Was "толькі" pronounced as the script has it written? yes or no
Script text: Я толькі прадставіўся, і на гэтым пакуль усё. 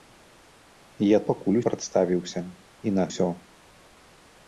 no